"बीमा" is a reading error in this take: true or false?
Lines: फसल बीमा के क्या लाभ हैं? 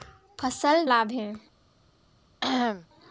true